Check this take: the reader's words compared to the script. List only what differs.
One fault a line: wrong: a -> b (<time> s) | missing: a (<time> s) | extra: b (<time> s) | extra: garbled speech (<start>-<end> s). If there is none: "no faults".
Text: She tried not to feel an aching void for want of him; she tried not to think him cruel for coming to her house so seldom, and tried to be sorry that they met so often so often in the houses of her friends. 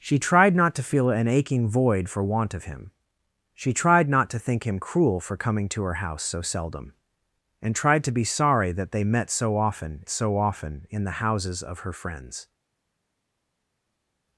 no faults